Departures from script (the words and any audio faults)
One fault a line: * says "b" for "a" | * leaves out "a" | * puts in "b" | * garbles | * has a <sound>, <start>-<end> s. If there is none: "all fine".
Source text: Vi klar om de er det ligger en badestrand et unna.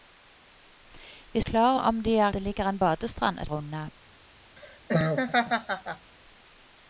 * has a laugh, 4.6-6.1 s